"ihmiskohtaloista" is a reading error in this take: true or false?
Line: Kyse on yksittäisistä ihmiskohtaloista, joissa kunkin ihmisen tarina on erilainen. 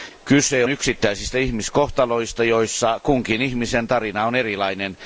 false